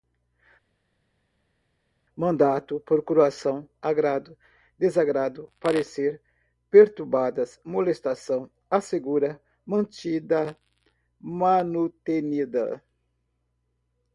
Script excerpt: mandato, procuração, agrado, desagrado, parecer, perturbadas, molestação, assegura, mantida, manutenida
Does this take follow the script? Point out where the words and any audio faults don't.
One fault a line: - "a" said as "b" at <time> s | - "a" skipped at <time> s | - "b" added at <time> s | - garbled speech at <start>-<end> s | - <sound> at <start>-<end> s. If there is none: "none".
none